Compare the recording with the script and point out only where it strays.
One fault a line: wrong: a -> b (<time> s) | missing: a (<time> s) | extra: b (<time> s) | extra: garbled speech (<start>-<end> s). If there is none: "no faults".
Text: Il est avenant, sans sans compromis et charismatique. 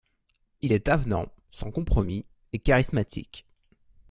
missing: sans (1.7 s)